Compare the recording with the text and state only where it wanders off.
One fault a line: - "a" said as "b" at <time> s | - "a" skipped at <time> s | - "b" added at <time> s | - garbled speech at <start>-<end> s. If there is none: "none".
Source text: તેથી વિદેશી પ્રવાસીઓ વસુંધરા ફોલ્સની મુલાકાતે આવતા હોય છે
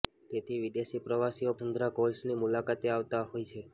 none